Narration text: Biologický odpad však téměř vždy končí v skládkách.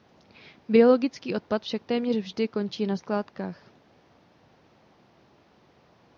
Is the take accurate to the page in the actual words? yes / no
no